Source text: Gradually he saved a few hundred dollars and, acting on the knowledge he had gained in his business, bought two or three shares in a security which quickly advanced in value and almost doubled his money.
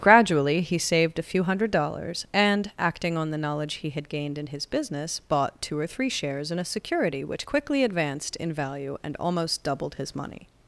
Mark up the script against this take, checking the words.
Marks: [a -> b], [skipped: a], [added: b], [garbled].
Gradually he saved a few hundred dollars and, acting on the knowledge he had gained in his business, bought two or three shares in a security which quickly advanced in value and almost doubled his money.